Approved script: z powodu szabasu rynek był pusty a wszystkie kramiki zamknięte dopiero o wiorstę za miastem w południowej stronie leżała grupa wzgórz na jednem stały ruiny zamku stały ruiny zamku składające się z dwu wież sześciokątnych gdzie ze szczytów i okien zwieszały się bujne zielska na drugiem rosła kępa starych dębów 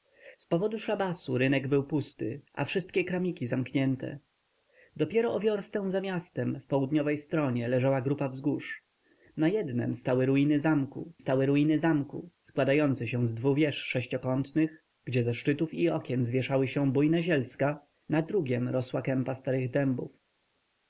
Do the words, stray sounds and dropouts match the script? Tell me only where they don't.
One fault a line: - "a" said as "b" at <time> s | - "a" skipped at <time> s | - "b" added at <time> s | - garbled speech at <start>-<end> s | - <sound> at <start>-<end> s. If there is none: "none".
none